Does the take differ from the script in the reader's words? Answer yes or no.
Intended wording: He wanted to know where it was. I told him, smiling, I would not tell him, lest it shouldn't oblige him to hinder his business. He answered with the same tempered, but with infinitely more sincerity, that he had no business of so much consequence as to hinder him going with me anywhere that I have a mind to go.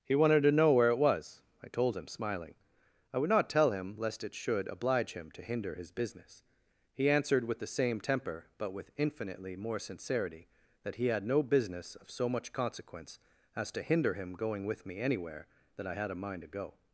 yes